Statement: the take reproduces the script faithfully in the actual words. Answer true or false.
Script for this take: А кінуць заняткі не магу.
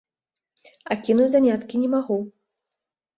true